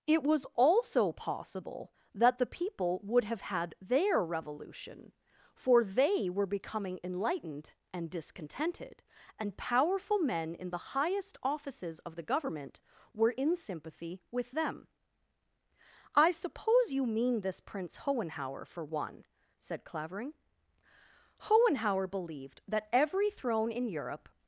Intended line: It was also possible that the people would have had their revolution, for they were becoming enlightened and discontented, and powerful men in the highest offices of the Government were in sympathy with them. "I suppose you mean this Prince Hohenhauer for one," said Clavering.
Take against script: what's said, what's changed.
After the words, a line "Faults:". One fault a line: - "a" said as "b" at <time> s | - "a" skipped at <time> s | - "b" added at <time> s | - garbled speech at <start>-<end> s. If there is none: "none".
It was also possible that the people would have had their revolution, for they were becoming enlightened and discontented, and powerful men in the highest offices of the Government were in sympathy with them. "I suppose you mean this Prince Hohenhauer for one," said Clavering. "Hohenhauer believed that every throne in Europe
Faults:
- "Hohenhauer believed that every throne in Europe" added at 21.4 s